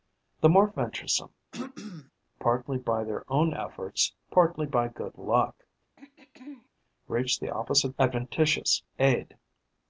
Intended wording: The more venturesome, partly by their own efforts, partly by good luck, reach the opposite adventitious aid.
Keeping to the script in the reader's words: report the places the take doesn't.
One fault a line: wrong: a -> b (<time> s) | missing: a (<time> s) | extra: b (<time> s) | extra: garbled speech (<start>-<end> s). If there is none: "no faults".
no faults